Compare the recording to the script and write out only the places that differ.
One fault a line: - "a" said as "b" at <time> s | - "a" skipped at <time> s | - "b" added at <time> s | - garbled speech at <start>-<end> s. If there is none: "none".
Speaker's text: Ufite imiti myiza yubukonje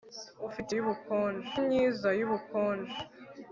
- "imiti" said as "yubukonje" at 0.8 s